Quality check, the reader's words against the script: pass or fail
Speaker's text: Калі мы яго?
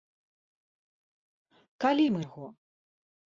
pass